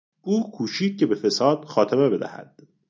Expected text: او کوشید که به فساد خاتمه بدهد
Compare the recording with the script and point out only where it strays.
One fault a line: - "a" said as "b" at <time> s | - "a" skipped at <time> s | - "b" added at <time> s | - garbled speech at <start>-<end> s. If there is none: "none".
none